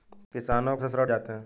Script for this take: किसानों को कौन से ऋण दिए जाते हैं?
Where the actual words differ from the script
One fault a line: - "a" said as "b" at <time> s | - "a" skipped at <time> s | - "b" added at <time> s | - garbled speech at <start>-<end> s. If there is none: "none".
- "को कौन" skipped at 0.8 s
- "दिए" skipped at 1.1 s